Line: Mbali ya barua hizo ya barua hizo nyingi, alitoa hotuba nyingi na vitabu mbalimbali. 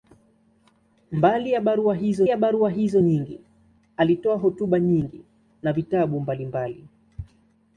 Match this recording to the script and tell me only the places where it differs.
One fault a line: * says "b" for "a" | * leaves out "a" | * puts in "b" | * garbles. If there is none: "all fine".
all fine